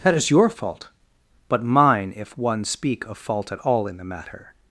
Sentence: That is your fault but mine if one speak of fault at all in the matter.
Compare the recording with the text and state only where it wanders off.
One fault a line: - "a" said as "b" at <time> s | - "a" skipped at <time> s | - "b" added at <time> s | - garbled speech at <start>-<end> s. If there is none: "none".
none